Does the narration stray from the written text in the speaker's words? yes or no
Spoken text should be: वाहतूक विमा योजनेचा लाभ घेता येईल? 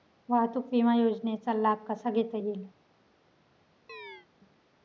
yes